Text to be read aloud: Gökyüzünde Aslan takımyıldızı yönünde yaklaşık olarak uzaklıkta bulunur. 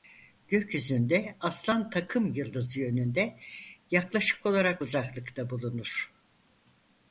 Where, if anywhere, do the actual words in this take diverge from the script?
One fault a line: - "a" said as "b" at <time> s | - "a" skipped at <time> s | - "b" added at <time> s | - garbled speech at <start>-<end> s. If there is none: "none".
none